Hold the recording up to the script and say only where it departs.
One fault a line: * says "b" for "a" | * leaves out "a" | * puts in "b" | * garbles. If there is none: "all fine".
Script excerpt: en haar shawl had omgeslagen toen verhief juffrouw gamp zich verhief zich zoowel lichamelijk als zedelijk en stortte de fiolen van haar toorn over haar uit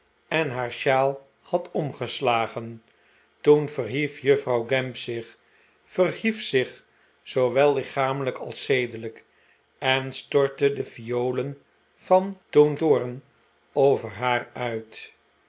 * says "toen" for "haar"